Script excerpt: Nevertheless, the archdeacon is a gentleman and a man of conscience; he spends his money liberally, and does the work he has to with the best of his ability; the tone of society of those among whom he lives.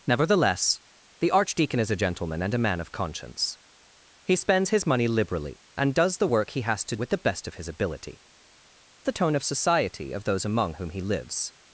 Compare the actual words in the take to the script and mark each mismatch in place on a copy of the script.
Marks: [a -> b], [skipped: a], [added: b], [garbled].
Nevertheless, the archdeacon is a gentleman and a man of conscience; he spends his money liberally, and does the work he has to with the best of his ability; the tone of society of those among whom he lives.